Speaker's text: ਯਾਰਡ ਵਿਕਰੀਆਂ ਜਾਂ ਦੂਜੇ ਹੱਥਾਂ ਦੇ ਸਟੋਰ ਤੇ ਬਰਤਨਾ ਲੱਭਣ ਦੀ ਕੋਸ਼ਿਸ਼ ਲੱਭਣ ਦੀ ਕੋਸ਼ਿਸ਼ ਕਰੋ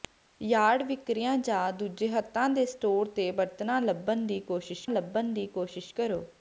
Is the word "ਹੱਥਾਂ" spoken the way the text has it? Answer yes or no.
yes